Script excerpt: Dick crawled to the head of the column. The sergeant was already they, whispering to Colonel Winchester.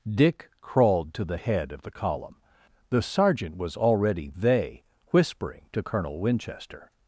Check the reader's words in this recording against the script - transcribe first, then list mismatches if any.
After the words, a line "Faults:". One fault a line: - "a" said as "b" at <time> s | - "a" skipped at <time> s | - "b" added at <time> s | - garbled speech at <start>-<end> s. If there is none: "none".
Dick crawled to the head of the column. The sergeant was already they, whispering to Colonel Winchester.
Faults:
none